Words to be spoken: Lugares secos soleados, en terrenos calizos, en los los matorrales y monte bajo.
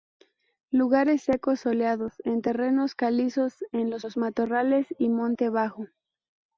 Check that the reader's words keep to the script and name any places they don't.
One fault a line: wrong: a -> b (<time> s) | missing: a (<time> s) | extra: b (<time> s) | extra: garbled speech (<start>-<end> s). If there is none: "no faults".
no faults